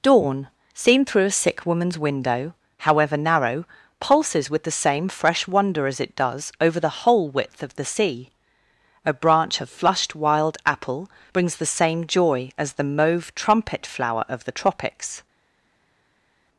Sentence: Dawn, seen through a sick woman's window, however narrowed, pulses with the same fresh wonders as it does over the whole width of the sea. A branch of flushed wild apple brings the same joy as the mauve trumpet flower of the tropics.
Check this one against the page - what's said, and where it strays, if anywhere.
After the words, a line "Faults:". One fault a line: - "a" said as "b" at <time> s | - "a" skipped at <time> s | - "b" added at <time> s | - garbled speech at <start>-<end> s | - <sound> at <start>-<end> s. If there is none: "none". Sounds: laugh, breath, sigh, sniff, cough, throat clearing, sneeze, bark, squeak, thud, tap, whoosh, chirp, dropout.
Dawn, seen through a sick woman's window, however narrow, pulses with the same fresh wonder as it does over the whole width of the sea. A branch of flushed wild apple brings the same joy as the mauve trumpet flower of the tropics.
Faults:
- "narrowed" said as "narrow" at 3.1 s
- "wonders" said as "wonder" at 5.5 s